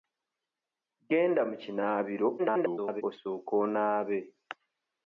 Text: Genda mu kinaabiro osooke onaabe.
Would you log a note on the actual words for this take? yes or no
yes